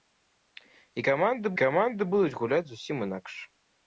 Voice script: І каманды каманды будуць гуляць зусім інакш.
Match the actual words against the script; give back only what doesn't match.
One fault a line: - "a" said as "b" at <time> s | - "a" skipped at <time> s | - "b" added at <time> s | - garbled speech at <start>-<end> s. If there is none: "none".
none